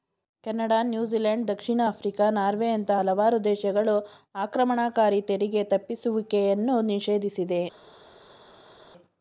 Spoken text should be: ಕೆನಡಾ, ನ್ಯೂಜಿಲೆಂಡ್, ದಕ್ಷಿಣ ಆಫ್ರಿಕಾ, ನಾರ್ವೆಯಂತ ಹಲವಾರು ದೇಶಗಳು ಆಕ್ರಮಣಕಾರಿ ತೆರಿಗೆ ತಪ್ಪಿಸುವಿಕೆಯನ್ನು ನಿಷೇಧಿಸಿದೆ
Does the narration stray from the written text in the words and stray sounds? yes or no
no